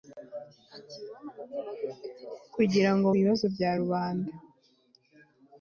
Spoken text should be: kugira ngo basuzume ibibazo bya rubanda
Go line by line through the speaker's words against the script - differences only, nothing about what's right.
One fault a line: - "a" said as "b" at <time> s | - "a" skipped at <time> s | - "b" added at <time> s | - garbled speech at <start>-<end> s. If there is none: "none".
- "basuzume" skipped at 3.1 s